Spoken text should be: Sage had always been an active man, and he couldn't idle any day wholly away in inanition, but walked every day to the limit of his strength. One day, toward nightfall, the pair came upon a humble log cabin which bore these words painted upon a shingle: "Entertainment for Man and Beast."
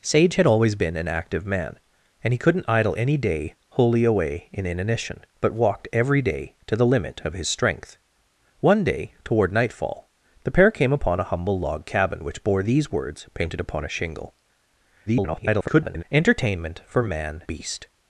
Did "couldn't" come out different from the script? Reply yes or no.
no